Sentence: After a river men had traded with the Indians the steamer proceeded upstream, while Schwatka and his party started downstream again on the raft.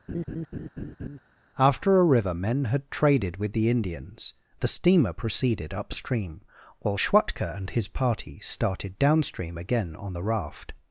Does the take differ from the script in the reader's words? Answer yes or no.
no